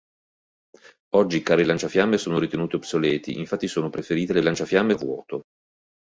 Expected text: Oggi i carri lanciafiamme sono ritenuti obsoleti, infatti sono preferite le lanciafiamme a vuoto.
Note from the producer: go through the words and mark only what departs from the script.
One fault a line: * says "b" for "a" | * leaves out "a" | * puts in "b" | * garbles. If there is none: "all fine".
all fine